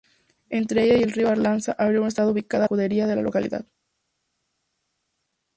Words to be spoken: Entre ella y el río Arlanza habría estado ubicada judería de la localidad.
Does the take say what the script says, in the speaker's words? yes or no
yes